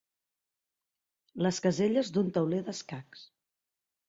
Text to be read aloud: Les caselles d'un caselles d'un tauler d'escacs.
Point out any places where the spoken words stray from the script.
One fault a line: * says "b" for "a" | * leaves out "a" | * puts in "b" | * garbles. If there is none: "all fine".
* leaves out "caselles d'un"